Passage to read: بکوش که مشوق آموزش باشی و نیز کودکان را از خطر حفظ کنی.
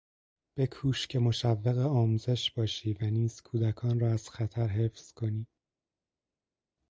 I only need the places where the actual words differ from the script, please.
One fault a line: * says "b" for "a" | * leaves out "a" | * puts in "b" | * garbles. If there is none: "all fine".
all fine